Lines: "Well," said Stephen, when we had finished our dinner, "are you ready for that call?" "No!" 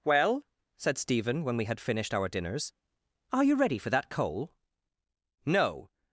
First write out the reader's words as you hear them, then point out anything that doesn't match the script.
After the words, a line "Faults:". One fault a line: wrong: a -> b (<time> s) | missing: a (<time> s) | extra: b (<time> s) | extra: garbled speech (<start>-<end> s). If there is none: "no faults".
"Well," said Stephen, when we had finished our dinners, "are you ready for that coal?" "No!"
Faults:
wrong: dinner -> dinners (2.3 s)
wrong: call -> coal (4.1 s)